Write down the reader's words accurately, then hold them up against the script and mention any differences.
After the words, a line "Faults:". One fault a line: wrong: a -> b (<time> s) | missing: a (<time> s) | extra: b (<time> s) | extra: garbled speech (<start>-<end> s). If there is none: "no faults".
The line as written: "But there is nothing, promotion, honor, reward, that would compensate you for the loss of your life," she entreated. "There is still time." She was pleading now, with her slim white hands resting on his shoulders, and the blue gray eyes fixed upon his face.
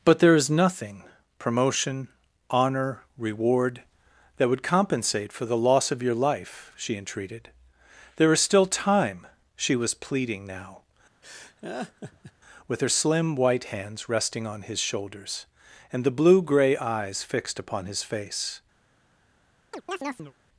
"But there is nothing, promotion, honor, reward, that would compensate for the loss of your life," she entreated. "There is still time." She was pleading now, with her slim white hands resting on his shoulders, and the blue gray eyes fixed upon his face.
Faults:
missing: you (5.3 s)